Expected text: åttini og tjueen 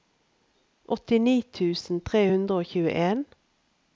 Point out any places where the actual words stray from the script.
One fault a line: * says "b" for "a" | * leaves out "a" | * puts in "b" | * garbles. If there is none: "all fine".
* puts in "tusen tre hundre"